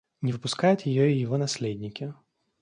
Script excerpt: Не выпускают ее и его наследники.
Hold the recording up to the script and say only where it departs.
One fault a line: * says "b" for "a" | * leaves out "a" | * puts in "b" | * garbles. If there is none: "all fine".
all fine